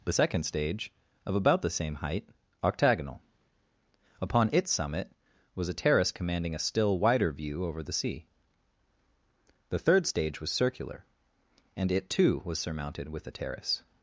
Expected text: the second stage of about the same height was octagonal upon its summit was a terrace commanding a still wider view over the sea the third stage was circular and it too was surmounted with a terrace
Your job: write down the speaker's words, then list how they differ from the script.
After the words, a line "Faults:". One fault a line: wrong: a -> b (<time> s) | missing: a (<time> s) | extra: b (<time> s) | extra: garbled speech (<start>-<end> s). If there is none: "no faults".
the second stage of about the same height octagonal upon its summit was a terrace commanding a still wider view over the sea the third stage was circular and it too was surmounted with a terrace
Faults:
missing: was (2.3 s)